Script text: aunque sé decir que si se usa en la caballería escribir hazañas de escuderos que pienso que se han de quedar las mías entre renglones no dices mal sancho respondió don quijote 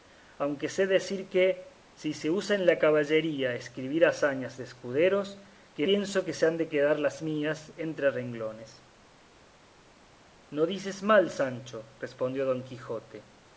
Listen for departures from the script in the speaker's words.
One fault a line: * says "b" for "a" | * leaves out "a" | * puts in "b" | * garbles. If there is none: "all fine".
all fine